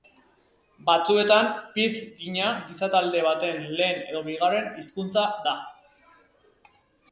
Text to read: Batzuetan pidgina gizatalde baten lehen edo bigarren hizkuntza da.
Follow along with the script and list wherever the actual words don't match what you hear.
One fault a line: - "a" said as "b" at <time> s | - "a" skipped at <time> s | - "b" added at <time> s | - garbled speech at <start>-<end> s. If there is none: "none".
none